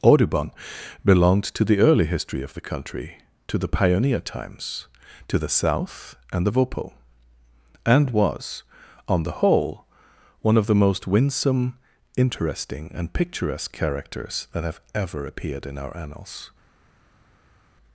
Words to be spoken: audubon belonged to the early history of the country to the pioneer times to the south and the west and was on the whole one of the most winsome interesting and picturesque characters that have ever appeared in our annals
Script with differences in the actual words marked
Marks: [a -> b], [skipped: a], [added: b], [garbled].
audubon belonged to the early history of the country to the pioneer times to the south and the [west -> vopo] and was on the whole one of the most winsome interesting and picturesque characters that have ever appeared in our annals